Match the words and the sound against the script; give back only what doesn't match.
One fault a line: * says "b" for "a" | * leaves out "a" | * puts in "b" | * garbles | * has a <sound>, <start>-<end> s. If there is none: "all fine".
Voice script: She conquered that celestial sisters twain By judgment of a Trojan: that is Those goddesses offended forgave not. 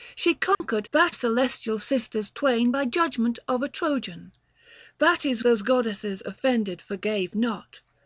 * has a dropout, 0.5-0.6 s